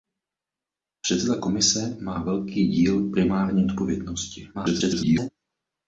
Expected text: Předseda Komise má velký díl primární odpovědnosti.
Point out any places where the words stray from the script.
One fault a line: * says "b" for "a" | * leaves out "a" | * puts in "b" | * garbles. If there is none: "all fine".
* garbles